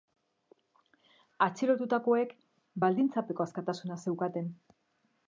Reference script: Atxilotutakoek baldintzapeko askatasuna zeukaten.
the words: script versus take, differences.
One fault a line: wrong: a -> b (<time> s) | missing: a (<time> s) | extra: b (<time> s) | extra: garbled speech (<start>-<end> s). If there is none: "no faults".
no faults